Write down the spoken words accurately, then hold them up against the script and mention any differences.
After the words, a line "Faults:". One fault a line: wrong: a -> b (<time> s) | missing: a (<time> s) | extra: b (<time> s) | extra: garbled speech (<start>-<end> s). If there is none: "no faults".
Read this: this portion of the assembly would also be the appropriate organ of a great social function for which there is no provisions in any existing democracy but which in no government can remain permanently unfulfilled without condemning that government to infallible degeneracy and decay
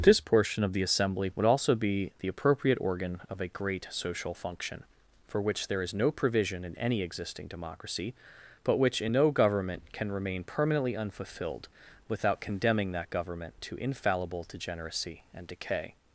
this portion of the assembly would also be the appropriate organ of a great social function for which there is no provision in any existing democracy but which in no government can remain permanently unfulfilled without condemning that government to infallible degeneracy and decay
Faults:
wrong: provisions -> provision (6.1 s)